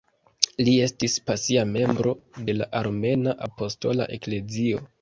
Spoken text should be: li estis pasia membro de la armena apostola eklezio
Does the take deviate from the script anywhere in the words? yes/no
no